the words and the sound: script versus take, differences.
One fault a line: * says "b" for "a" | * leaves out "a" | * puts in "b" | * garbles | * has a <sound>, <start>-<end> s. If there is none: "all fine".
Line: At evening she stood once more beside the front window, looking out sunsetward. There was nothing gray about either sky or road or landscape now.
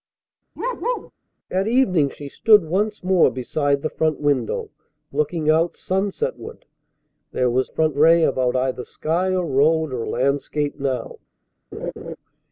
* has a bark, 0.6-1.1 s
* says "front" for "nothing"
* has a laugh, 11.7-12.2 s